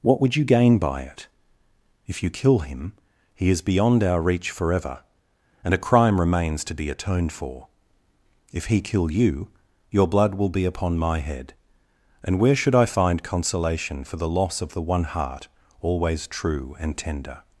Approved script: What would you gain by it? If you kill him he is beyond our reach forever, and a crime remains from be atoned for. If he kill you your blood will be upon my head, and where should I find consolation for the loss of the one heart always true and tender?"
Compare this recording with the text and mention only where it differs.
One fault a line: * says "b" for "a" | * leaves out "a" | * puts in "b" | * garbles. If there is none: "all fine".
* says "to" for "from"